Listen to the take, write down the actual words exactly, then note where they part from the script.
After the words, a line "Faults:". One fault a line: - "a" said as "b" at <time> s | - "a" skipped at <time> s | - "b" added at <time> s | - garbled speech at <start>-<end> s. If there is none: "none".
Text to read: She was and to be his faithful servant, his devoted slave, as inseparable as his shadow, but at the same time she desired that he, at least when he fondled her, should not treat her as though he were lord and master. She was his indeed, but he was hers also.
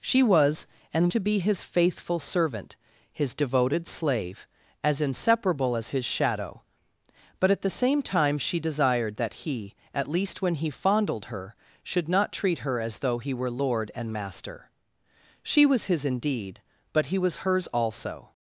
She was and to be his faithful servant, his devoted slave, as inseparable as his shadow, but at the same time she desired that he, at least when he fondled her, should not treat her as though he were lord and master. She was his indeed, but he was hers also.
Faults:
none